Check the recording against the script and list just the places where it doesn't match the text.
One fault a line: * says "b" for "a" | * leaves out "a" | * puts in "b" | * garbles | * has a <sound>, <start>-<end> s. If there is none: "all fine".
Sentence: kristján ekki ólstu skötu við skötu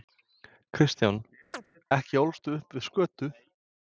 * has a chirp, 1.5-1.7 s
* says "upp" for "skötu"